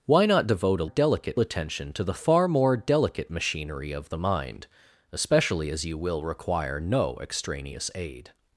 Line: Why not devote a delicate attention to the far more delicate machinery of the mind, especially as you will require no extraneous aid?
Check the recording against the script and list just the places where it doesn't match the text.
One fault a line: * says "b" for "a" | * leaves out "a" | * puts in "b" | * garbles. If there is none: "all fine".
all fine